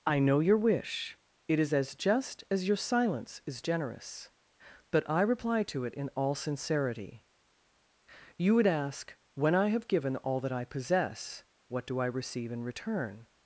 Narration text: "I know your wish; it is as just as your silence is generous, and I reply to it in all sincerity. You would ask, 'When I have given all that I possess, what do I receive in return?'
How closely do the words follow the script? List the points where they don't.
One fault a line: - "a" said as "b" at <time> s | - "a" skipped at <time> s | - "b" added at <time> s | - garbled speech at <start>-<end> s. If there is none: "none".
- "and" said as "but" at 4.9 s